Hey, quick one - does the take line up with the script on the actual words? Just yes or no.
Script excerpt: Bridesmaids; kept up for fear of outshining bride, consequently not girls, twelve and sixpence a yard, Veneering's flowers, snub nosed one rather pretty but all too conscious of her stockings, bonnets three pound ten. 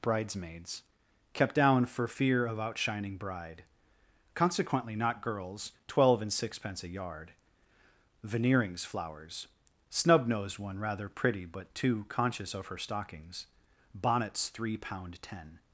no